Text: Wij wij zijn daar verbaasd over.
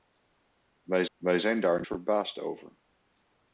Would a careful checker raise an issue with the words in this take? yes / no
no